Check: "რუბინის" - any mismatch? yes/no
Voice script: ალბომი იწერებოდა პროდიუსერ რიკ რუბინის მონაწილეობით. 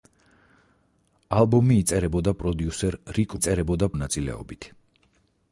yes